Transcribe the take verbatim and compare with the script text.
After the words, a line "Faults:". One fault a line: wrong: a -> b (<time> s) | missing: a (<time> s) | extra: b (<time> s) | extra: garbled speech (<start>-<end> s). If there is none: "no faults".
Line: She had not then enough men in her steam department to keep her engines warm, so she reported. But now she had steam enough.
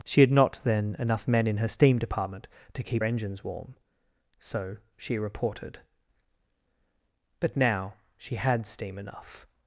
She had not then enough men in her steam department to keep engines warm, so she reported. But now she had steam enough.
Faults:
missing: her (3.0 s)